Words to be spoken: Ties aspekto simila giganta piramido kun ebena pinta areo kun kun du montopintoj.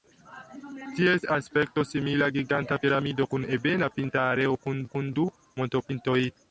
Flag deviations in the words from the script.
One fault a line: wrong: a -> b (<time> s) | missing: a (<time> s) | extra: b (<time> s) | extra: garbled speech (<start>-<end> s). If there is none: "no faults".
no faults